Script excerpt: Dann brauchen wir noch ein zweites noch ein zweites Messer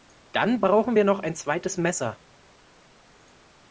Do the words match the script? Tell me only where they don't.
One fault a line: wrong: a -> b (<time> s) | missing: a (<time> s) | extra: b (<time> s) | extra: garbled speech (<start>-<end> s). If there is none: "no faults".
missing: noch ein zweites (1.7 s)